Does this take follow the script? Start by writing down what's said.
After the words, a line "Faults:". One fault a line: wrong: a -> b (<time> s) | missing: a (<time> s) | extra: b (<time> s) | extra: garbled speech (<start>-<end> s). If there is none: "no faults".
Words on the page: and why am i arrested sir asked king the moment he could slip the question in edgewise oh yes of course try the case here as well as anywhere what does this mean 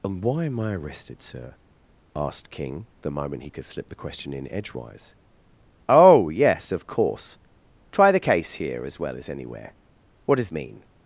and why am i arrested sir asked king the moment he could slip the question in edgewise oh yes of course try the case here as well as anywhere what does mean
Faults:
missing: this (10.5 s)